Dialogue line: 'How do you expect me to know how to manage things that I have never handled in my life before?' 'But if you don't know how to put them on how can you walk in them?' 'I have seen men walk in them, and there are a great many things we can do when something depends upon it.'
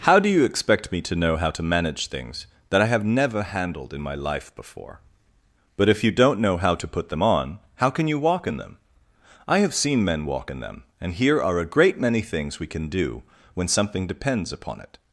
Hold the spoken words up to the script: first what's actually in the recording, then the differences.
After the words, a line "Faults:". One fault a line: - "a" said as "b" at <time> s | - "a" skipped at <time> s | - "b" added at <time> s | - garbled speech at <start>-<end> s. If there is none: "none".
'How do you expect me to know how to manage things that I have never handled in my life before?' 'But if you don't know how to put them on how can you walk in them?' 'I have seen men walk in them, and here are a great many things we can do when something depends upon it.'
Faults:
- "there" said as "here" at 11.1 s